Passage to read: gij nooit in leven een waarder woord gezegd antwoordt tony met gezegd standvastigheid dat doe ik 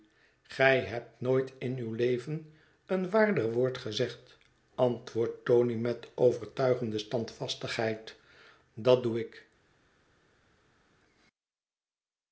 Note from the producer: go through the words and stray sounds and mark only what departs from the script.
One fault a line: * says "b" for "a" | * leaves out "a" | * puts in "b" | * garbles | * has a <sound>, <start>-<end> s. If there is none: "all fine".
* puts in "hebt"
* puts in "uw"
* says "overtuigende" for "gezegd"